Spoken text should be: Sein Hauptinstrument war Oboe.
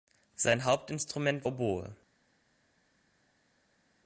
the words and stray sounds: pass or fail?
fail